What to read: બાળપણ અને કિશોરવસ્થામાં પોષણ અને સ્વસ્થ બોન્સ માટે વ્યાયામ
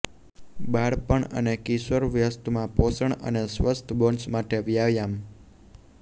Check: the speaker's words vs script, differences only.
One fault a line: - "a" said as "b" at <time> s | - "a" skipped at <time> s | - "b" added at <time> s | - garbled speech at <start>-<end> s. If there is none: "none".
none